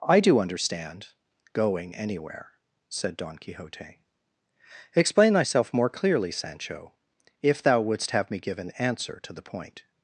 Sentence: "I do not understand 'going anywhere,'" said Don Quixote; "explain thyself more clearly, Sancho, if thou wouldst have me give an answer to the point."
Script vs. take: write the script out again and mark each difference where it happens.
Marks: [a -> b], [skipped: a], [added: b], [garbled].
"I do [skipped: not] understand 'going anywhere,'" said Don Quixote; "explain thyself more clearly, Sancho, if thou wouldst have me give an answer to the point."